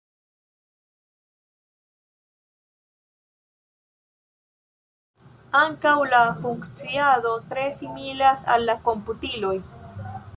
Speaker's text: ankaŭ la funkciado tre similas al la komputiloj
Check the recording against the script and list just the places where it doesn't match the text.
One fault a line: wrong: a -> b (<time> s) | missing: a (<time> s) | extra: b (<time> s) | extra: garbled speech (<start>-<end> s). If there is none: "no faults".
no faults